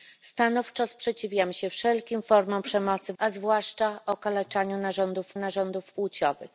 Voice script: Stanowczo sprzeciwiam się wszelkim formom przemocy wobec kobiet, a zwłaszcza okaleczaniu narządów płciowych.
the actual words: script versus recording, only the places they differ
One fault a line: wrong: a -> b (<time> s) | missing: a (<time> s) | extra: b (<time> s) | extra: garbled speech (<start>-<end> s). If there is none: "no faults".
missing: wobec kobiet (3.1 s)
extra: narządów (5.4 s)